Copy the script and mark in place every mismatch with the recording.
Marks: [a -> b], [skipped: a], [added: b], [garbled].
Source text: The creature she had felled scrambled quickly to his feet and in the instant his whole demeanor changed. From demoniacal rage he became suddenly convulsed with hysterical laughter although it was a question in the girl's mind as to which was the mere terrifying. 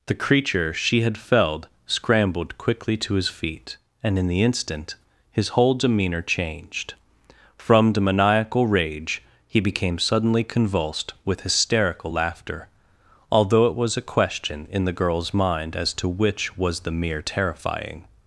The creature she had felled scrambled quickly to his feet and in the instant his whole demeanor changed. From demoniacal rage he became suddenly convulsed with hysterical laughter although it was a question in the girl's mind as to which was the mere terrifying.